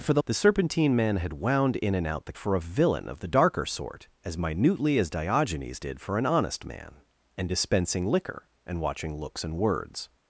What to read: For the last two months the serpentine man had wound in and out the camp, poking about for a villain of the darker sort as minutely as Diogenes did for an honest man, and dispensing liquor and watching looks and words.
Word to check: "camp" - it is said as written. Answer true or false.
false